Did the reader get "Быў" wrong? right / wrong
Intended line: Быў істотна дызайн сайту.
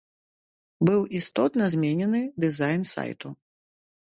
right